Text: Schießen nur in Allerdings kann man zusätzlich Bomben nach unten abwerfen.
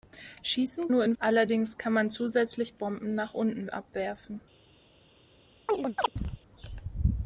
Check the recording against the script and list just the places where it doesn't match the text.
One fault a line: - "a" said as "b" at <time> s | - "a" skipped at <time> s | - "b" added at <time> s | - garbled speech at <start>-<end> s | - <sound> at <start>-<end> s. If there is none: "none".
- chirp at 5.7-6.4 s